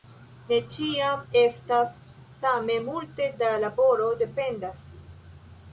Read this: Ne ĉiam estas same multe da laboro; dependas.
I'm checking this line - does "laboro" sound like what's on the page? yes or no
yes